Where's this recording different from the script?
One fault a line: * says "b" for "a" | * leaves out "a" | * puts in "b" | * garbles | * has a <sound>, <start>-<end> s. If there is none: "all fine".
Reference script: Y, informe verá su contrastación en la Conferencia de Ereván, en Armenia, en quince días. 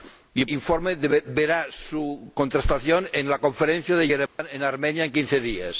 * has a dropout, 4.3-4.4 s